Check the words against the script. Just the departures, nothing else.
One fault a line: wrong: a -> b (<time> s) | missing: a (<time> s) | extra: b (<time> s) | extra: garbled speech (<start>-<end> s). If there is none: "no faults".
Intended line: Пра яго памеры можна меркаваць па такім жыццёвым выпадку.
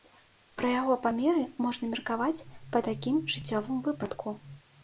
no faults